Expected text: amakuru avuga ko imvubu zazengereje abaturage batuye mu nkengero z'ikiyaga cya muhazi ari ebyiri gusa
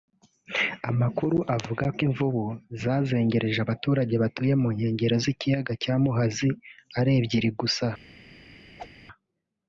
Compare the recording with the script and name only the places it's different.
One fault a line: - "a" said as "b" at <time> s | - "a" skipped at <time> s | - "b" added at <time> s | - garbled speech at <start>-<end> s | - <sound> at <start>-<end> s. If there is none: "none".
- whoosh at 8.8-8.9 s